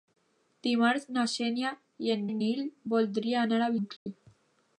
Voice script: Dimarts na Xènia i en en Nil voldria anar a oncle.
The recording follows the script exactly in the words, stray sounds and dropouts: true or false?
false